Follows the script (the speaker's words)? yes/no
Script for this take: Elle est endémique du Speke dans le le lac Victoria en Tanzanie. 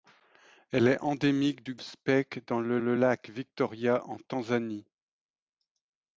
yes